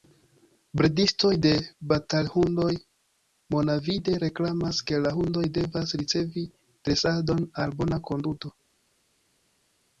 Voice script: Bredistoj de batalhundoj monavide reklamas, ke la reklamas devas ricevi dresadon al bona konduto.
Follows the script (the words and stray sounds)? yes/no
no